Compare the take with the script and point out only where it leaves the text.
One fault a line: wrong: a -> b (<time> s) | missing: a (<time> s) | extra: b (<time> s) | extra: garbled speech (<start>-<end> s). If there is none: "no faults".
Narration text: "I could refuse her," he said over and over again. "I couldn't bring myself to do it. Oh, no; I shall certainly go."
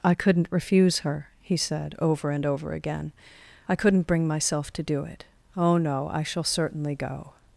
wrong: could -> couldn't (0.1 s)